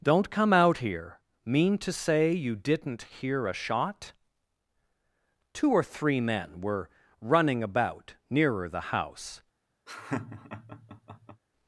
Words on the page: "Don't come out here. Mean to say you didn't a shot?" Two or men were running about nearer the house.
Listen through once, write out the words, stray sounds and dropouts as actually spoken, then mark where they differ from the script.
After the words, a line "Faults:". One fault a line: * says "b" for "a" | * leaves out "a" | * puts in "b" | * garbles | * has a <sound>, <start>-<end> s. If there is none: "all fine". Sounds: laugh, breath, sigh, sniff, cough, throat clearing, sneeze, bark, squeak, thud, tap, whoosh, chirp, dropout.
"Don't come out here. Mean to say you didn't hear a shot?" Two or three men were running about nearer the house.
Faults:
* puts in "hear"
* puts in "three"
* has a laugh, 9.9-11.4 s